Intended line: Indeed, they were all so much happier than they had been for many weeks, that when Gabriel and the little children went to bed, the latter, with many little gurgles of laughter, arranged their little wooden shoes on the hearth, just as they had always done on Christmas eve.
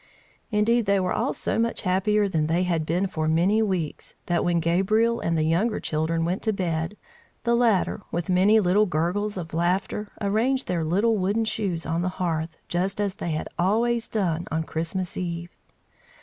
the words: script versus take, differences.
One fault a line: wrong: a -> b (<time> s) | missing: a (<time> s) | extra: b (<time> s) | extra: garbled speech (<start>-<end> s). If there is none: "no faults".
wrong: little -> younger (5.4 s)